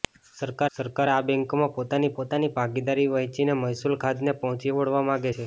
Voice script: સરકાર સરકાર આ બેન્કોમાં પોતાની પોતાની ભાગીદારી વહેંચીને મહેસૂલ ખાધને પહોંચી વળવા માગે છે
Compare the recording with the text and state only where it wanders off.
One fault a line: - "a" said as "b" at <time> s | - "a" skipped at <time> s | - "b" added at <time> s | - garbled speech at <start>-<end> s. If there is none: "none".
none